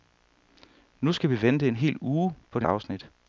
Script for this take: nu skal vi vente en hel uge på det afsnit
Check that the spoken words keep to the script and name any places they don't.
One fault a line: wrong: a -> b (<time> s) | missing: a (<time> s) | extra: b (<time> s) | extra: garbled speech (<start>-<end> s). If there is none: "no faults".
no faults